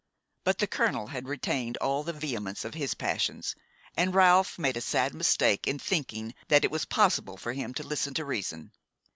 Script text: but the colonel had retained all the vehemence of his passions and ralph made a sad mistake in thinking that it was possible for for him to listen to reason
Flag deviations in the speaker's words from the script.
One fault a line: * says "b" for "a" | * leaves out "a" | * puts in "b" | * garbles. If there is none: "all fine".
* leaves out "for"